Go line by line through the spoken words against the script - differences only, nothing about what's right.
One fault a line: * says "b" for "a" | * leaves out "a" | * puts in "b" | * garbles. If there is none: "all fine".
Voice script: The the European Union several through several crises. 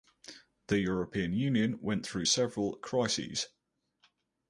* leaves out "the"
* says "went" for "several"